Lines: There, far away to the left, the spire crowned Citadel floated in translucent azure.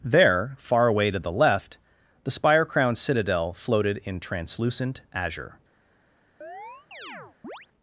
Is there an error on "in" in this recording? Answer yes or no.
no